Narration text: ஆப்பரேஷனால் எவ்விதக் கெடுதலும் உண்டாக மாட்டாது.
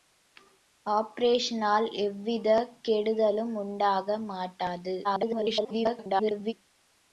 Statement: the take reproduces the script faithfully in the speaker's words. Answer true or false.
false